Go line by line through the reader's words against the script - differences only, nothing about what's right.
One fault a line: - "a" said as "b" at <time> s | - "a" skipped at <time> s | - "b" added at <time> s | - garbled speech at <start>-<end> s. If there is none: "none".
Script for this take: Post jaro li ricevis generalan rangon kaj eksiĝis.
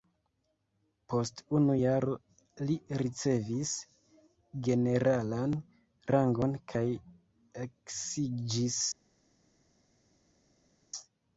- "unu" added at 1.6 s